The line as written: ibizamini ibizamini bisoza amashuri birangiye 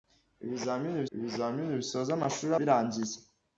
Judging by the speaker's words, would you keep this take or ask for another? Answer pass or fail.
pass